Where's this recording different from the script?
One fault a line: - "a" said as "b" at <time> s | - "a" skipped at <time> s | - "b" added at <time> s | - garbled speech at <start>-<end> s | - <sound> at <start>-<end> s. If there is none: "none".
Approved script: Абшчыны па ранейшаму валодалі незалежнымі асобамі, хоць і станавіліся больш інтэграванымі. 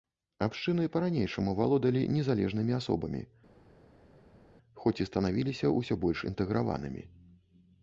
- "ўсё" added at 5.8 s